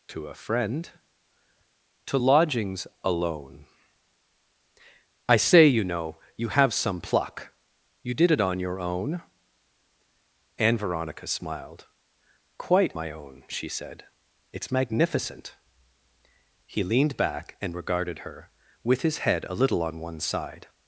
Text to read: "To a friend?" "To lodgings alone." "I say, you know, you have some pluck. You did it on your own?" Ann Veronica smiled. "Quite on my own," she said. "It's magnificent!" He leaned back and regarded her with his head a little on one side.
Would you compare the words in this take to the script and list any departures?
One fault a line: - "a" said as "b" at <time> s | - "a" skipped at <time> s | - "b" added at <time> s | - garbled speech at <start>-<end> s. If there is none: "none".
- "on" skipped at 12.9 s